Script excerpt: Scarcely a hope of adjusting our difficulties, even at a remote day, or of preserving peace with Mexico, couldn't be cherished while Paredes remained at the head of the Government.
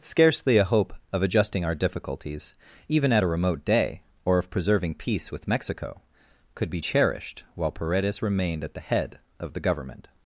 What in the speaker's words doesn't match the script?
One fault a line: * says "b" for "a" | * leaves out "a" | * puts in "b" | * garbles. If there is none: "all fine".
* says "could" for "couldn't"